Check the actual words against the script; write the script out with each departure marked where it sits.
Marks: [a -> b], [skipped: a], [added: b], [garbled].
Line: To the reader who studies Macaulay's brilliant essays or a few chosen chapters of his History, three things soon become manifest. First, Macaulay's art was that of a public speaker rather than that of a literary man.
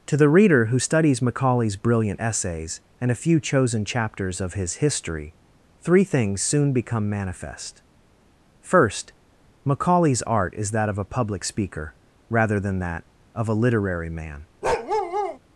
To the reader who studies Macaulay's brilliant essays [or -> and] a few chosen chapters of his History, three things soon become manifest. First, Macaulay's art [was -> is] that of a public speaker rather than that of a literary man.